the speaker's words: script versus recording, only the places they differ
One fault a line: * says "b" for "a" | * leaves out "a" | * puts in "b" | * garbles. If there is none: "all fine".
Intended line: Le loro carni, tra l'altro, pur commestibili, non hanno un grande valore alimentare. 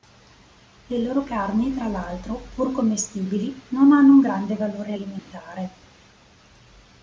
all fine